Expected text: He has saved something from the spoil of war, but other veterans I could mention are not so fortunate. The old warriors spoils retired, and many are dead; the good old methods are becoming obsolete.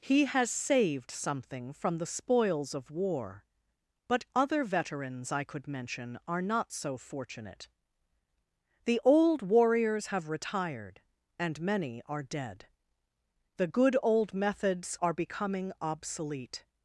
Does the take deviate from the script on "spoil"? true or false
true